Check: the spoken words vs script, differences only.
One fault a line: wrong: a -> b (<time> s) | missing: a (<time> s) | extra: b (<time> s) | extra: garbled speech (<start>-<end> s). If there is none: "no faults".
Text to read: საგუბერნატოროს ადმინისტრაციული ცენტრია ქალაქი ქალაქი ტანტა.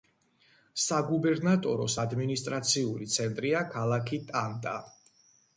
missing: ქალაქი (4.2 s)